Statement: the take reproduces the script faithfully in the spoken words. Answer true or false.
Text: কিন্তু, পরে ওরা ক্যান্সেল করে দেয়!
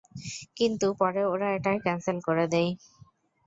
false